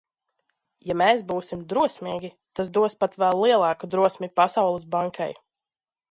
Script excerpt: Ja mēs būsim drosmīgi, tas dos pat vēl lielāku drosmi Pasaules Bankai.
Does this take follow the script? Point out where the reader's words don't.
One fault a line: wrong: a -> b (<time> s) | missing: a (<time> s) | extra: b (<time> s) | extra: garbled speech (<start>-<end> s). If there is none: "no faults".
no faults